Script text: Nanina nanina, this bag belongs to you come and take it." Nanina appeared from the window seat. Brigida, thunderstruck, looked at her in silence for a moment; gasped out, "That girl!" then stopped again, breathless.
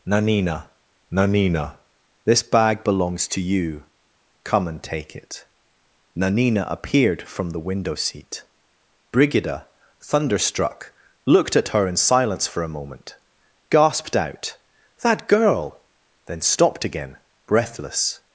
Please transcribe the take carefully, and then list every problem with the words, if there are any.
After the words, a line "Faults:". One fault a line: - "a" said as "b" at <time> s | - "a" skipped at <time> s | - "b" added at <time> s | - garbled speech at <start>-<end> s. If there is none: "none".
Nanina nanina, this bag belongs to you come and take it." Nanina appeared from the window seat. Brigida, thunderstruck, looked at her in silence for a moment; gasped out, "That girl!" then stopped again, breathless.
Faults:
none